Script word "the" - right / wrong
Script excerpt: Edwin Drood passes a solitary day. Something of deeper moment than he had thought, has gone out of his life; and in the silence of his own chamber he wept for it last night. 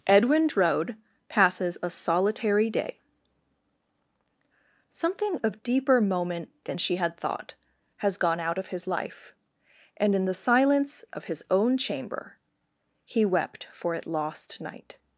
right